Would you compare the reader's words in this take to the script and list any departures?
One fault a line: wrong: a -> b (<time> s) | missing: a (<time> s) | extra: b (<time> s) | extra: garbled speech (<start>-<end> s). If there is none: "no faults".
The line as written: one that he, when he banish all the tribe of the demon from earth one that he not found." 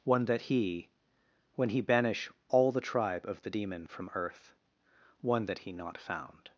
no faults